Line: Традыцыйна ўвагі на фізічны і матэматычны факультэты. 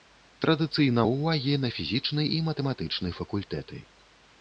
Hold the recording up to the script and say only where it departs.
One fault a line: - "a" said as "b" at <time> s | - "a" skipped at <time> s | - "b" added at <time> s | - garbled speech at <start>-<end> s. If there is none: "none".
none